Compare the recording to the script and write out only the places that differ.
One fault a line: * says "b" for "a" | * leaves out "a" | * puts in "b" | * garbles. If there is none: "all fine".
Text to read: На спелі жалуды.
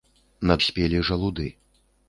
all fine